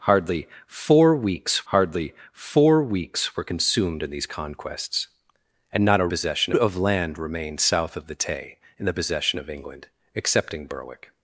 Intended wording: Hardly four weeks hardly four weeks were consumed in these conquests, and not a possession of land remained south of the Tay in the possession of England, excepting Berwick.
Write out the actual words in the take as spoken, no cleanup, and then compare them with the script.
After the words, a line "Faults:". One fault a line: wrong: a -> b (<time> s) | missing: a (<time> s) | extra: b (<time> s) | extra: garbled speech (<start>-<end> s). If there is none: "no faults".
Hardly four weeks hardly four weeks were consumed in these conquests, and not a possession of land remained south of the Tay in the possession of England, excepting Berwick.
Faults:
no faults